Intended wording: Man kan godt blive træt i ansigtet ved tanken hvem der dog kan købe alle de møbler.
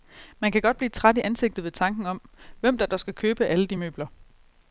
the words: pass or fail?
fail